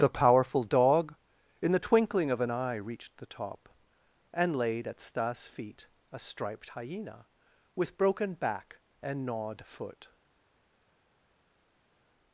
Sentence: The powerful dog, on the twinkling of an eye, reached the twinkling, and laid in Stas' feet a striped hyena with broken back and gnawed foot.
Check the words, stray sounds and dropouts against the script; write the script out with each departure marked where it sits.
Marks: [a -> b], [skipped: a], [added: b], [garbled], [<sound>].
The powerful dog, [on -> in] the twinkling of an eye, reached the [twinkling, -> top] and laid [in -> at] Stas' feet a striped hyena with broken back and gnawed foot.